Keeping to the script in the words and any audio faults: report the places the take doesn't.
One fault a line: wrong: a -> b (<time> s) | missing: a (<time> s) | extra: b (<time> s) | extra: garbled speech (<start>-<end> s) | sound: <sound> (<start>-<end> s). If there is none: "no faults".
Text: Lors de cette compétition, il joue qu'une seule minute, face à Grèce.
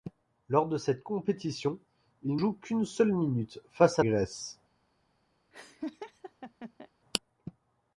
sound: laugh (5.5-6.9 s)